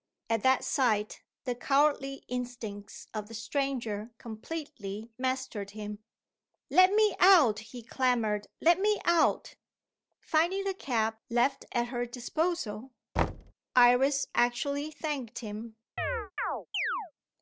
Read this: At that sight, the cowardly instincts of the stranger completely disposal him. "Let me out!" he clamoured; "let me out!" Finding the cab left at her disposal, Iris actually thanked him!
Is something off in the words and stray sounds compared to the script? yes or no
yes